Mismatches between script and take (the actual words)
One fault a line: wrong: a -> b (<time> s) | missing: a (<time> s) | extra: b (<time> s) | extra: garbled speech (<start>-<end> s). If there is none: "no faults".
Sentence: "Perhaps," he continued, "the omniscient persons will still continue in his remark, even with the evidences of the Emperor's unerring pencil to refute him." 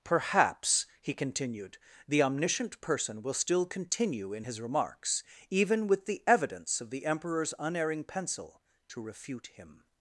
wrong: persons -> person (2.8 s)
wrong: remark -> remarks (4.6 s)
wrong: evidences -> evidence (6.3 s)